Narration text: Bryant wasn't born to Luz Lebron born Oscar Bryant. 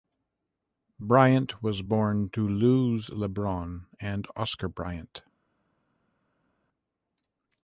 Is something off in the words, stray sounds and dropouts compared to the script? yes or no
yes